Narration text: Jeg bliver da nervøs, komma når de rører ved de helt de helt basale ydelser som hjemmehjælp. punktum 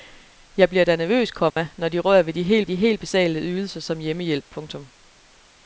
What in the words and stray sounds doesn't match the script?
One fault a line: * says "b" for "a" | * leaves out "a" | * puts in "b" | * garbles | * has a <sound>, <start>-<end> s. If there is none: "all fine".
* has a dropout, 1.5-1.6 s